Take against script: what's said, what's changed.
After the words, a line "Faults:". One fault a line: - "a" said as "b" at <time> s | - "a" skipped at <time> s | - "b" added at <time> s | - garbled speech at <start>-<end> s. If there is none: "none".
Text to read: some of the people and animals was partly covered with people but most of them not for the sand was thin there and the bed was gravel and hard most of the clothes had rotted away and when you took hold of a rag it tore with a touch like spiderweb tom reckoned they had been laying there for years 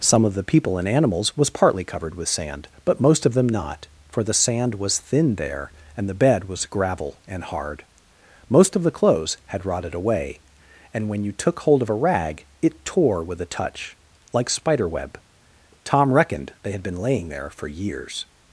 some of the people and animals was partly covered with sand but most of them not for the sand was thin there and the bed was gravel and hard most of the clothes had rotted away and when you took hold of a rag it tore with a touch like spiderweb tom reckoned they had been laying there for years
Faults:
- "people" said as "sand" at 2.3 s